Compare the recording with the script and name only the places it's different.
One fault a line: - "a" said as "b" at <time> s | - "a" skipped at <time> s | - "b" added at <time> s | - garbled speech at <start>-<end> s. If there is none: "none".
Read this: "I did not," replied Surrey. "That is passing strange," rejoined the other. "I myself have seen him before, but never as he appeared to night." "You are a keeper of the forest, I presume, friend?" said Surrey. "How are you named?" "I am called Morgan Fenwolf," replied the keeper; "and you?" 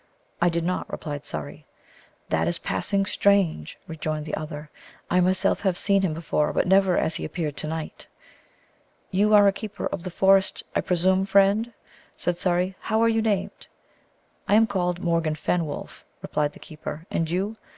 none